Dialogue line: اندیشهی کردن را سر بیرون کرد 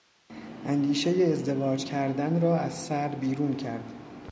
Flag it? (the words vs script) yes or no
yes